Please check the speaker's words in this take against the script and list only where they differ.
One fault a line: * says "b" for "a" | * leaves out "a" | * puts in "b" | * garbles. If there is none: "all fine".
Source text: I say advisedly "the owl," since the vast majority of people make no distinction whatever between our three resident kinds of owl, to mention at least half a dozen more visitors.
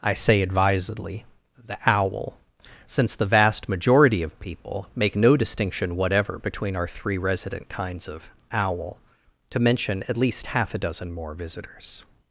all fine